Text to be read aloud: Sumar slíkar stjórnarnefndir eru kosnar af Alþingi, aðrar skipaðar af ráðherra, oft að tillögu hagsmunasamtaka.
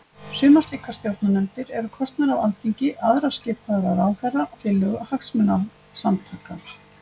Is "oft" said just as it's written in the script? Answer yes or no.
no